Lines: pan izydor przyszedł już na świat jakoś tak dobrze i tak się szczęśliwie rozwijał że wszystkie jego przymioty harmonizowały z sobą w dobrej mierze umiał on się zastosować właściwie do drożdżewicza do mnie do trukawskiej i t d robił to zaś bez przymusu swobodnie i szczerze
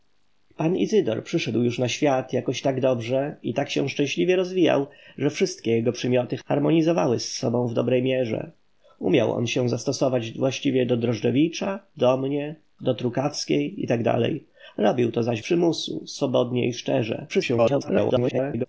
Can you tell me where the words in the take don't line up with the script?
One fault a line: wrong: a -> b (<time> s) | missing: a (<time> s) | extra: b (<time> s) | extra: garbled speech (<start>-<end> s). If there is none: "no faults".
missing: bez (15.4 s)
extra: garbled speech (17.3-18.7 s)